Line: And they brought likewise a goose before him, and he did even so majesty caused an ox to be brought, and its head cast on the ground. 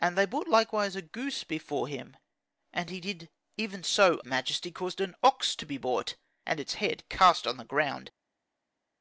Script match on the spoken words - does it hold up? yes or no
yes